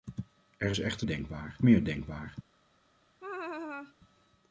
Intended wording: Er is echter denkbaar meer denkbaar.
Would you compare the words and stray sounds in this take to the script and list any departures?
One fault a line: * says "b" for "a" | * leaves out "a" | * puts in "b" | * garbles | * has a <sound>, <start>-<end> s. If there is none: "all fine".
* has a laugh, 3.2-3.9 s